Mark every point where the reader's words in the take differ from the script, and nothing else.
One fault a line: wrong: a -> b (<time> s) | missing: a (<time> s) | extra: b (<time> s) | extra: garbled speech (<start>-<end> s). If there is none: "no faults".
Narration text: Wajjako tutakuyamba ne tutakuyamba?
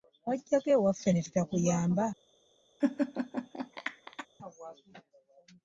wrong: tutakuyamba -> ewaffe (0.8 s)